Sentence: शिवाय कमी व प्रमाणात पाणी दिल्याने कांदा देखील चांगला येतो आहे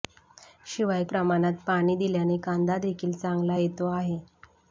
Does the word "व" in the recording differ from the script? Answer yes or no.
yes